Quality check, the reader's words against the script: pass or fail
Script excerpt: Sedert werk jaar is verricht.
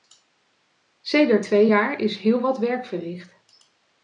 fail